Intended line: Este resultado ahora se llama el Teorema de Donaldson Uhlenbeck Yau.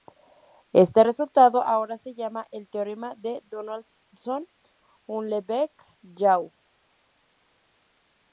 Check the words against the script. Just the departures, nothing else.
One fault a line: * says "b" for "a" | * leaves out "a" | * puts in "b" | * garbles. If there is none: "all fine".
all fine